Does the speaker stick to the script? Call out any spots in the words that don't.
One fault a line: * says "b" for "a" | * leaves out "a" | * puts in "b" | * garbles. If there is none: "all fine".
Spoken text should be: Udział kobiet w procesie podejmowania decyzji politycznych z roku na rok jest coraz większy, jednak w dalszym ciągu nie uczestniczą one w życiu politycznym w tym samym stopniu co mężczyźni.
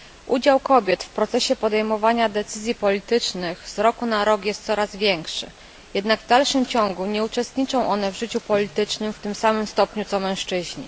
all fine